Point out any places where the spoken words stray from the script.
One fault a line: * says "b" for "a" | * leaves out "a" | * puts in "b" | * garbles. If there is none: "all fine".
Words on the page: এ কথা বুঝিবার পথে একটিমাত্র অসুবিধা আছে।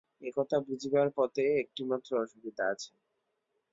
all fine